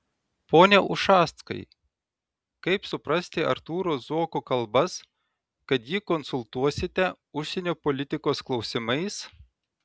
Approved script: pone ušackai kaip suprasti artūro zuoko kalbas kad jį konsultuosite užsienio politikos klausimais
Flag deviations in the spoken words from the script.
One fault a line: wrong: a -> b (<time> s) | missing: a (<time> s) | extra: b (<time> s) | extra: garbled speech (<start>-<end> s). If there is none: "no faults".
no faults